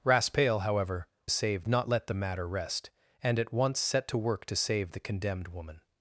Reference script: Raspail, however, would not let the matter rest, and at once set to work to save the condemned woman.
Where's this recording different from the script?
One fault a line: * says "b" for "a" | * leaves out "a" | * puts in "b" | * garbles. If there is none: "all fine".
* says "save" for "would"